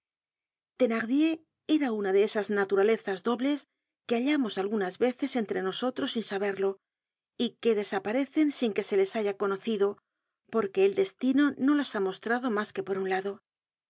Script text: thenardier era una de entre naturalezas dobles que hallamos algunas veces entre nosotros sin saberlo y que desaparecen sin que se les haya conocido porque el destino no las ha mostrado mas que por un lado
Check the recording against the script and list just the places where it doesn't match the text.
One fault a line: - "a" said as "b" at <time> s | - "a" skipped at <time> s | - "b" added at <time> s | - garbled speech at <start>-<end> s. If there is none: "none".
- "entre" said as "esas" at 2.2 s